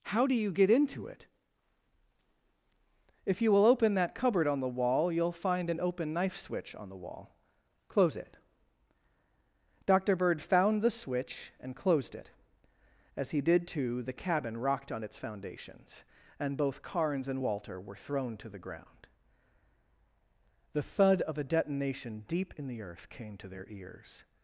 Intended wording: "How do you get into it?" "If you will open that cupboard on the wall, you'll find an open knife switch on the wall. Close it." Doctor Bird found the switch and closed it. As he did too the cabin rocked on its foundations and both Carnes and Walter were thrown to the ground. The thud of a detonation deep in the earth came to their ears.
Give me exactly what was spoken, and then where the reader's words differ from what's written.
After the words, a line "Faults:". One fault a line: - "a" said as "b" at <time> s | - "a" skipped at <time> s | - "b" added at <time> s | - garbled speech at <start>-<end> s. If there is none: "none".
"How do you get into it?" "If you will open that cupboard on the wall, you'll find an open knife switch on the wall. Close it." Doctor Bird found the switch and closed it. As he did too the cabin rocked on its foundations and both Carnes and Walter were thrown to the ground. The thud of a detonation deep in the earth came to their ears.
Faults:
none